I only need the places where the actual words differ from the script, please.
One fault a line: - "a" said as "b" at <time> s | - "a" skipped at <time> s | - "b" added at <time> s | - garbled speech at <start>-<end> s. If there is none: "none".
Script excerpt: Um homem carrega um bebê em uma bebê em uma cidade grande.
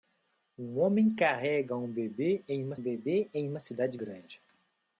none